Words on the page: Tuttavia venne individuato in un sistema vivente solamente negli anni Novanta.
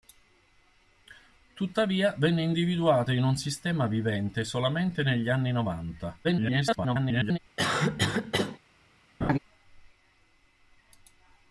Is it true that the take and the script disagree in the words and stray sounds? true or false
true